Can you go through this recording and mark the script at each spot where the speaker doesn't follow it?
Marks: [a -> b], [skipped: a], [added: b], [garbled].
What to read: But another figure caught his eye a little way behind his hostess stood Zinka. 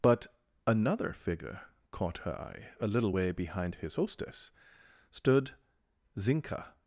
But another figure caught [his -> her] eye a little way behind his hostess stood Zinka.